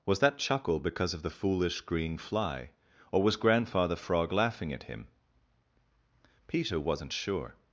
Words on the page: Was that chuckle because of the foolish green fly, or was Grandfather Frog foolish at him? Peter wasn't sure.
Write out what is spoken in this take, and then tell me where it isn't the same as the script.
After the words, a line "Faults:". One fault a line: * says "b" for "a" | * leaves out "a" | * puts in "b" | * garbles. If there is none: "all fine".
Was that chuckle because of the foolish green fly, or was Grandfather Frog laughing at him? Peter wasn't sure.
Faults:
* says "laughing" for "foolish"